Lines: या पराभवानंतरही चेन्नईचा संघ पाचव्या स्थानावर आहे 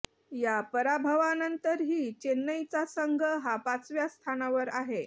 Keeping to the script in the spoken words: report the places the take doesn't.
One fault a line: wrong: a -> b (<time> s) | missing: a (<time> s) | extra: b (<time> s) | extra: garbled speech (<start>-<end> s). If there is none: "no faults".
extra: हा (3.4 s)